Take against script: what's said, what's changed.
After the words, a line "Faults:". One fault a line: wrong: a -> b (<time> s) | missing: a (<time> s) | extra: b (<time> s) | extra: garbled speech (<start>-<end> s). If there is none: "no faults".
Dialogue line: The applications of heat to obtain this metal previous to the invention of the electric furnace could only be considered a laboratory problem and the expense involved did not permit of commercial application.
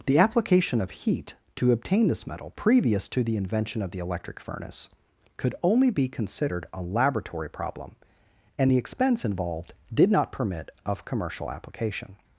The application of heat to obtain this metal previous to the invention of the electric furnace could only be considered a laboratory problem and the expense involved did not permit of commercial application.
Faults:
wrong: applications -> application (0.2 s)